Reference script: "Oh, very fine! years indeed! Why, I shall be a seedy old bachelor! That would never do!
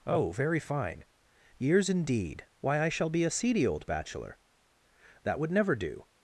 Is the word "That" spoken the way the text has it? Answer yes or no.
yes